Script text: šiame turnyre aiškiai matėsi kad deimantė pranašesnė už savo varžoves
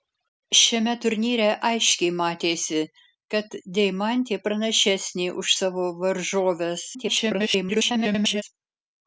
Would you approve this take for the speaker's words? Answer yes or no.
no